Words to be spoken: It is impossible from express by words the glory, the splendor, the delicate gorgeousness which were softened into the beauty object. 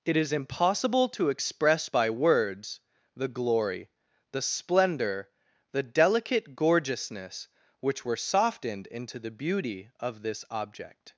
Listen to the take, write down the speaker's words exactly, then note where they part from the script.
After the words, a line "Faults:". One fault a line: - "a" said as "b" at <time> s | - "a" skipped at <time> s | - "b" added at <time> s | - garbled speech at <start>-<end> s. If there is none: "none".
It is impossible to express by words the glory, the splendor, the delicate gorgeousness which were softened into the beauty of this object.
Faults:
- "from" said as "to" at 1.1 s
- "of this" added at 10.0 s